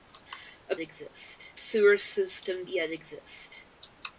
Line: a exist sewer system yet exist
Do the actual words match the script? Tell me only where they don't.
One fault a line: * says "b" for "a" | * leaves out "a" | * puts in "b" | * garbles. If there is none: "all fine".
all fine